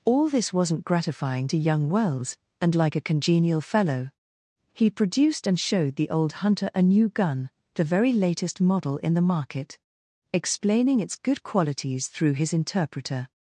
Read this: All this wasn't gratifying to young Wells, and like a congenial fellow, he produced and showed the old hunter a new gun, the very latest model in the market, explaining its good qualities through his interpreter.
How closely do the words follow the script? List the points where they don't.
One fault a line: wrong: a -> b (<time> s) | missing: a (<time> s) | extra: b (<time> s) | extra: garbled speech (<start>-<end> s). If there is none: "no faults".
no faults